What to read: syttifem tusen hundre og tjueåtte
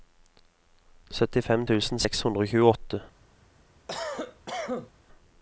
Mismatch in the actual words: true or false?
true